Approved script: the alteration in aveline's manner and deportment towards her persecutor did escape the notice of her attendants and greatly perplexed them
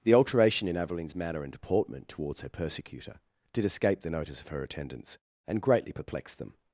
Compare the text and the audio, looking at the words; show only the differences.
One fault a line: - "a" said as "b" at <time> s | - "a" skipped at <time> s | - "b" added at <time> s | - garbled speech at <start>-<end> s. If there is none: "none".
none